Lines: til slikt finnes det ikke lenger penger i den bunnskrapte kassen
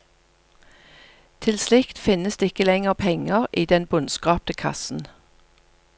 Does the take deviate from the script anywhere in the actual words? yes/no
no